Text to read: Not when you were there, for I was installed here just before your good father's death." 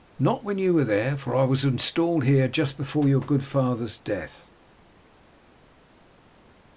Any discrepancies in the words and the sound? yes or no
no